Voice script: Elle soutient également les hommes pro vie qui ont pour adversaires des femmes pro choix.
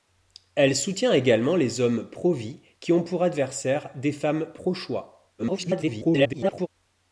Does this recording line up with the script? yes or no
no